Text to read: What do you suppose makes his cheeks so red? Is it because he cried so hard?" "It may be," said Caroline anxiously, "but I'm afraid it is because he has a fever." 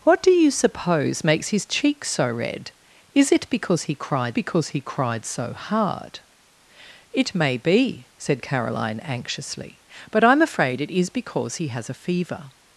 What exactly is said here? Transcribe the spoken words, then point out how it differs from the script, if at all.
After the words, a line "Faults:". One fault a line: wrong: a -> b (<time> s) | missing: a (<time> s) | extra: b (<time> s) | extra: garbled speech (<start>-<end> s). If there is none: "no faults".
What do you suppose makes his cheeks so red? Is it because he cried because he cried so hard?" "It may be," said Caroline anxiously, "but I'm afraid it is because he has a fever."
Faults:
extra: because he cried (4.3 s)